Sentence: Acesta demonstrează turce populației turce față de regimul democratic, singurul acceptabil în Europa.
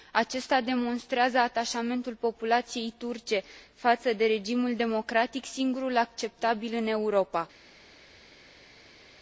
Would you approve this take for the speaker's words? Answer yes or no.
no